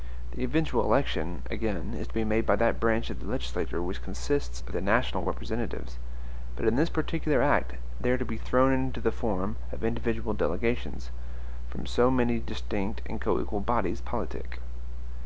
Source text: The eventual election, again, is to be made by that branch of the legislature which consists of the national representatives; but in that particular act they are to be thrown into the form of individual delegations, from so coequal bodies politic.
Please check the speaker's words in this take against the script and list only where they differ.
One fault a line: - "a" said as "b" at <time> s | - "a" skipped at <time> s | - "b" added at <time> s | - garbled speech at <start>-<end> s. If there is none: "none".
- "that" said as "this" at 6.8 s
- "many distinct and" added at 12.1 s